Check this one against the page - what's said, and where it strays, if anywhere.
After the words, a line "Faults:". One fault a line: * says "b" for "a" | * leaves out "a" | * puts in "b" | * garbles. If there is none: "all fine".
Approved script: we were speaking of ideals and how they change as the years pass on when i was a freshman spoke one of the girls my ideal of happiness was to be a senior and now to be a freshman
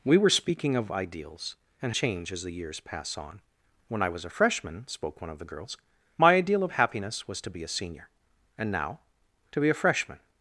we were speaking of ideals and change as the years pass on when i was a freshman spoke one of the girls my ideal of happiness was to be a senior and now to be a freshman
Faults:
* leaves out "how they"